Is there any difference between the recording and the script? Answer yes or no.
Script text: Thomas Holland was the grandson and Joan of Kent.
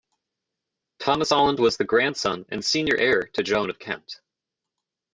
yes